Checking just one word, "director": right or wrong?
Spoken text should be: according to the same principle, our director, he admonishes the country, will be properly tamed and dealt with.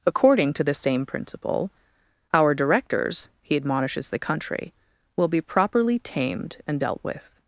wrong